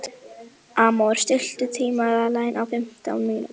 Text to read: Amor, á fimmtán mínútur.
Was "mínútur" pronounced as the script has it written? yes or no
yes